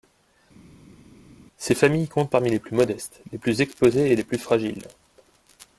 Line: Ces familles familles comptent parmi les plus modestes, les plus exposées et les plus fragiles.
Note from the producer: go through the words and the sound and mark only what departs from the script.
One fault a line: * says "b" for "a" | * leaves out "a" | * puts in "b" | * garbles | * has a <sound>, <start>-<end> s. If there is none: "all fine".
* leaves out "familles"